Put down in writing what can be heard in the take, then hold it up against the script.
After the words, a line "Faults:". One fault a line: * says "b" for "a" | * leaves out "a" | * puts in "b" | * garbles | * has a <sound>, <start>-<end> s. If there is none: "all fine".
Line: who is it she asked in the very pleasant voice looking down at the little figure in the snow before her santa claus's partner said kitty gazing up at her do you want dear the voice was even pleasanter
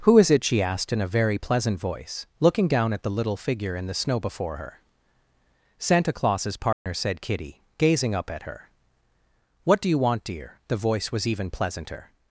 who is it she asked in a very pleasant voice looking down at the little figure in the snow before her santa claus's partner said kitty gazing up at her what do you want dear the voice was even pleasanter
Faults:
* says "a" for "the"
* has a dropout, 6.7-6.9 s
* puts in "what"